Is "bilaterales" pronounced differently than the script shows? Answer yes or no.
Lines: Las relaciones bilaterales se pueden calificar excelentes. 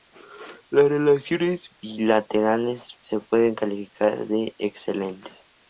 no